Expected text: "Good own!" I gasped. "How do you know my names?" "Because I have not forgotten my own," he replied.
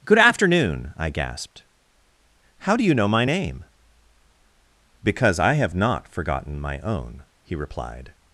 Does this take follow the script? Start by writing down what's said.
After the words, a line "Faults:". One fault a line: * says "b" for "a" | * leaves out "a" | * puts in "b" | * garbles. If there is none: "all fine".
"Good afternoon!" I gasped. "How do you know my name?" "Because I have not forgotten my own," he replied.
Faults:
* says "afternoon" for "own"
* says "name" for "names"